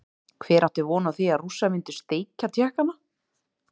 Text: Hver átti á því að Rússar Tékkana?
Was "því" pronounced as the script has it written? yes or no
yes